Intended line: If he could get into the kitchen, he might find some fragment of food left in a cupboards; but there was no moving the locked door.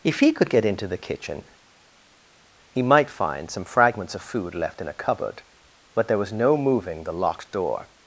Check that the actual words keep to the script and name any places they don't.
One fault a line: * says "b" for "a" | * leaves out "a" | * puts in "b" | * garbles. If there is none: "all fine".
* says "fragments" for "fragment"
* says "cupboard" for "cupboards"